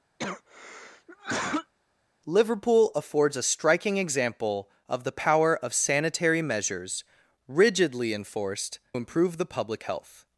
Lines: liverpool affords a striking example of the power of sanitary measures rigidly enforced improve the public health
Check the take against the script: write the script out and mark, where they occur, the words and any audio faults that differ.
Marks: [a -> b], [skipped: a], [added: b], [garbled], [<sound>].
[cough] liverpool affords a striking example of the power of sanitary measures rigidly enforced improve the public health